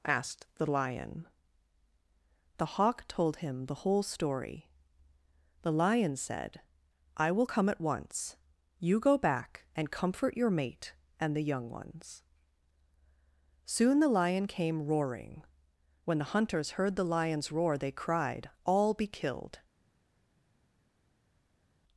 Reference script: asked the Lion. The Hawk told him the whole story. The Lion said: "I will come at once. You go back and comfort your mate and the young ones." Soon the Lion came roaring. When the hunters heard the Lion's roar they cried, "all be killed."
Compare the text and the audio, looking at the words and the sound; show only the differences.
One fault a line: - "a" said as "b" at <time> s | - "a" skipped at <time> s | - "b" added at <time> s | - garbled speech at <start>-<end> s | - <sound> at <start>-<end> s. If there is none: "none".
none